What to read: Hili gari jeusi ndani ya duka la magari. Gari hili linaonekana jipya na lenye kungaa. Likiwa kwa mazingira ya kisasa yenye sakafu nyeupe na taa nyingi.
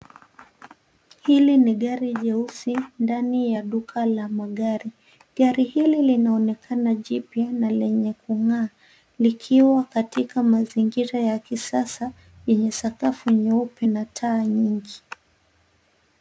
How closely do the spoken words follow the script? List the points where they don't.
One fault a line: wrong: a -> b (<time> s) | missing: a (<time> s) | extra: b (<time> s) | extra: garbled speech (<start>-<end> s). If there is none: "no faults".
extra: ni (1.6 s)
wrong: kwa -> katika (9.8 s)